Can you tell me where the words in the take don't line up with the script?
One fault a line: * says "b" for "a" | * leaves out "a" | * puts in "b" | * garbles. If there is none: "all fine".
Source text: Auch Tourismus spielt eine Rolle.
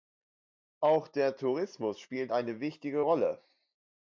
* puts in "der"
* puts in "wichtige"